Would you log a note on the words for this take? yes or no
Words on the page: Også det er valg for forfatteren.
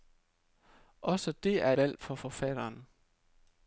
no